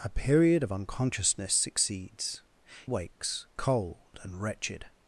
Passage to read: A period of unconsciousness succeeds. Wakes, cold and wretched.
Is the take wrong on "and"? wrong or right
right